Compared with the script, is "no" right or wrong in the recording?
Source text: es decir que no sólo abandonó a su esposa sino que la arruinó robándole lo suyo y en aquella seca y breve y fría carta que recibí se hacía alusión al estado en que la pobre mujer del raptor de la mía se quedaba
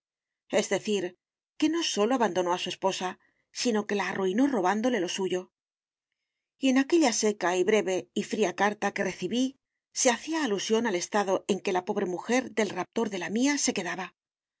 right